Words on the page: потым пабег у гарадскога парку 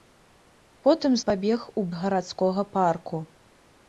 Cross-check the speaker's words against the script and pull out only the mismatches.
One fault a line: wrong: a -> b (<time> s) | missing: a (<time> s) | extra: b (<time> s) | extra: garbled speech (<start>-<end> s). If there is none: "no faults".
no faults